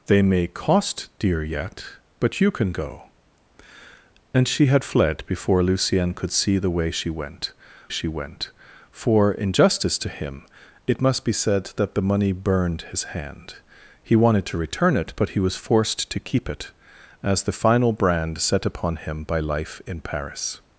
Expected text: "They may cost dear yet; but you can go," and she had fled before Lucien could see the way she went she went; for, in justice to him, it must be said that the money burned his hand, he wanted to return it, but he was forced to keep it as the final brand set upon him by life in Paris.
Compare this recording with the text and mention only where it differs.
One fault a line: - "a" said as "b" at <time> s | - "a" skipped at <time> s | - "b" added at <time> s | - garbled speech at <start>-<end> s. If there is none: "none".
none